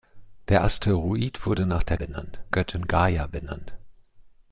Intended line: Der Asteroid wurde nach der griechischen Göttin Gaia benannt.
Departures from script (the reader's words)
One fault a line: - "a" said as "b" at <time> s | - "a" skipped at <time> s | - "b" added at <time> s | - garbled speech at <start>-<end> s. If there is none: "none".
- "griechischen" said as "benannt" at 1.9 s